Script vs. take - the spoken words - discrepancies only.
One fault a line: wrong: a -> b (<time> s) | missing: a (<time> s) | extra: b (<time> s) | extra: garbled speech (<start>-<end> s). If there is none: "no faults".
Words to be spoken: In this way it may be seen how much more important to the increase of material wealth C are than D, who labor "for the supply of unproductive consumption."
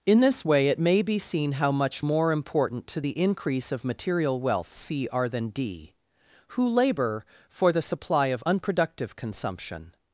no faults